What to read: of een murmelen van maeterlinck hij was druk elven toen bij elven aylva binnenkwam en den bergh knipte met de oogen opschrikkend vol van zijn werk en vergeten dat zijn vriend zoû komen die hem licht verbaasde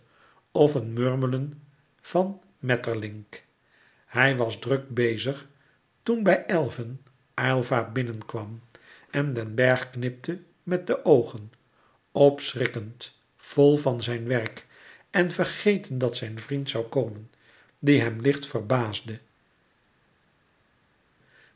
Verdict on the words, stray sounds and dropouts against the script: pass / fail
fail